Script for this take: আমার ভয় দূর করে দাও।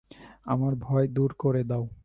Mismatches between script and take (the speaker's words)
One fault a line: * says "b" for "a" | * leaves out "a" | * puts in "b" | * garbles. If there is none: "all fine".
all fine